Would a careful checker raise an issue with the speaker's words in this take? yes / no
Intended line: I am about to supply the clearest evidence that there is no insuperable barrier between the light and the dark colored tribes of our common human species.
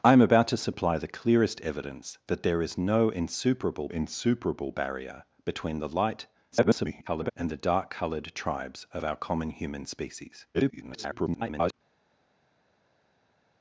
yes